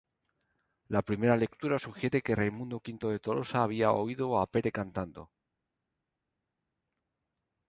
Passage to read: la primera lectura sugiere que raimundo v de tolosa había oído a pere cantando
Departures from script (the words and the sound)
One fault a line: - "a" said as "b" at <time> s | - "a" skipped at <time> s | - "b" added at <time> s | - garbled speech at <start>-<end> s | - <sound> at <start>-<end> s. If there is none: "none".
none